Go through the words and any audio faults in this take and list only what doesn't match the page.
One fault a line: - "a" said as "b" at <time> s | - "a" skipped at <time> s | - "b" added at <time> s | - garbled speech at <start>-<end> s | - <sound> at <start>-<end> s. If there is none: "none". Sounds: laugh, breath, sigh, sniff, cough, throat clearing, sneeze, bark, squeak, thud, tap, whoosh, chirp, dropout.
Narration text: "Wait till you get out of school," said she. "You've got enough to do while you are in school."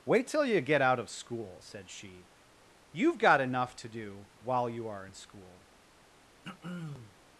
- throat clearing at 6.4-7.2 s